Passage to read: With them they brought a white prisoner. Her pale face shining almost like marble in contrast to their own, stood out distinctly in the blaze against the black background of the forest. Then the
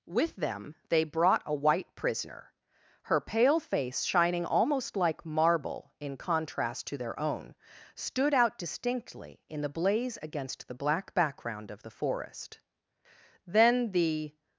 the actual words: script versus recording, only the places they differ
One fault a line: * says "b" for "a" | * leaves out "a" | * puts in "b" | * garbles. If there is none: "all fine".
all fine